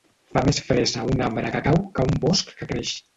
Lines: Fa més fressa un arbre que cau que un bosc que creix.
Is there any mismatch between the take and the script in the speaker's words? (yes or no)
no